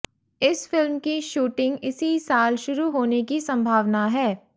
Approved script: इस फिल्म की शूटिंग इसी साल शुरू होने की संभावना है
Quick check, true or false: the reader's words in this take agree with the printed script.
true